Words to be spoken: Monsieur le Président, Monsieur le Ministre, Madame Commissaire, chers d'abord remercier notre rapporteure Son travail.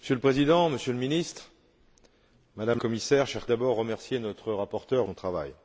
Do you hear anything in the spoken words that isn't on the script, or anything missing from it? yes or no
no